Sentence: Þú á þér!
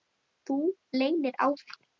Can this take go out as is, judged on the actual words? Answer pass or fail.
fail